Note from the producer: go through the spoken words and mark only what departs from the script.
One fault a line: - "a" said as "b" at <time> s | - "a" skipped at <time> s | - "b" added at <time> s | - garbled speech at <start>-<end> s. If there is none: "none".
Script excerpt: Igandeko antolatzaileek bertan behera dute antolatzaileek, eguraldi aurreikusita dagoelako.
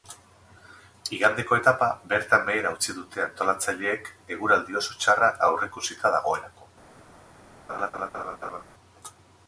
- "antolatzaileek" said as "etapa" at 1.6 s
- "utzi" added at 2.7 s
- "oso txarra" added at 4.8 s